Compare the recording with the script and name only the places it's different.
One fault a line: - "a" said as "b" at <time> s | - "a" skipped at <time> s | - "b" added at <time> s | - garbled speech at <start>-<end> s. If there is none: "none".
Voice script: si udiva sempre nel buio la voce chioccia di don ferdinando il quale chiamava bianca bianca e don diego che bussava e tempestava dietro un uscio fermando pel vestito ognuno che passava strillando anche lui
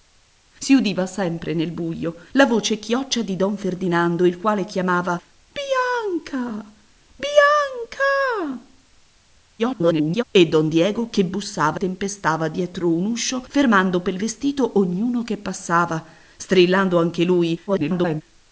- garbled speech at 9.6-10.2 s
- "e" skipped at 11.8 s
- garbled speech at 17.7-18.2 s